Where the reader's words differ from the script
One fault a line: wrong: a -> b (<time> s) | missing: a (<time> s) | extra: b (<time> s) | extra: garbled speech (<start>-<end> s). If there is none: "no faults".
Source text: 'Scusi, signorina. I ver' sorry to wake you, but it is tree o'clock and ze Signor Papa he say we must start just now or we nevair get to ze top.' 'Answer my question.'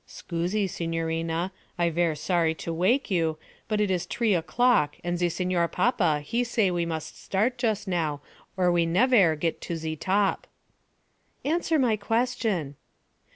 no faults